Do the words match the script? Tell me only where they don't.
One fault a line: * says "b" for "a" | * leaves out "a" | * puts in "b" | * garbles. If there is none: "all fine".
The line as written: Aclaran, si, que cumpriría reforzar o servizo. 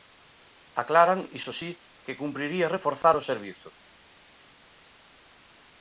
* puts in "iso"